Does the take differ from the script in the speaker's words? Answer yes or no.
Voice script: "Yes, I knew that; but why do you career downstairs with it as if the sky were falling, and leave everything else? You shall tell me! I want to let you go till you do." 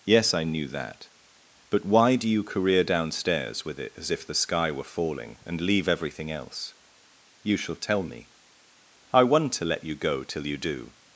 no